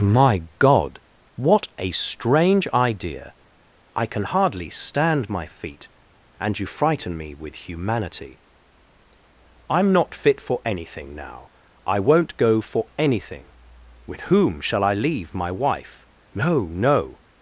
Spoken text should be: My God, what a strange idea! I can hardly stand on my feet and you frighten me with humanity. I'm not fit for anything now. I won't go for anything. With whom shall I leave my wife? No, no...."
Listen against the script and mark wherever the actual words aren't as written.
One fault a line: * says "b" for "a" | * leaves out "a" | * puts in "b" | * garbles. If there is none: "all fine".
* leaves out "on"